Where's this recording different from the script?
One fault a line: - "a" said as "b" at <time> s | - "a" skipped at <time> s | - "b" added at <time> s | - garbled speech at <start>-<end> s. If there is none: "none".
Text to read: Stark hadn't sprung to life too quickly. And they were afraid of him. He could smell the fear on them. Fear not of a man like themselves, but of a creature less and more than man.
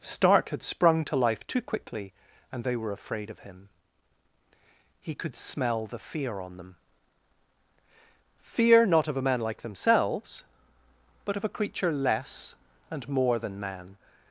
- "hadn't" said as "had" at 0.5 s